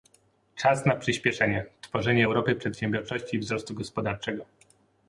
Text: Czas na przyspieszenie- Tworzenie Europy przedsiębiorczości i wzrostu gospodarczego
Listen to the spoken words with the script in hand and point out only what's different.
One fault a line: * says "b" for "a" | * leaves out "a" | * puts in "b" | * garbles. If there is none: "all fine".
all fine